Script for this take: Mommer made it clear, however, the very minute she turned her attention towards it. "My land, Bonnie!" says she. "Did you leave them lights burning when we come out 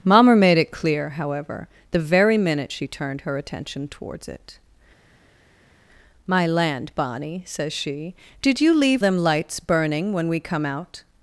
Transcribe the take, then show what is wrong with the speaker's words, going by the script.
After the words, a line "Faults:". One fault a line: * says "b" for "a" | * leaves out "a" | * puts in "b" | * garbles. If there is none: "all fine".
Mommer made it clear, however, the very minute she turned her attention towards it. "My land, Bonnie!" says she. "Did you leave them lights burning when we come out
Faults:
all fine